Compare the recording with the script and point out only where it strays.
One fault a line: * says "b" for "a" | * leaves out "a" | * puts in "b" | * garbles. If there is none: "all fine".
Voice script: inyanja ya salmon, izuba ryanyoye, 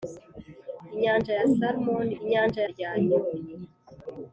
* says "inyanja" for "izuba"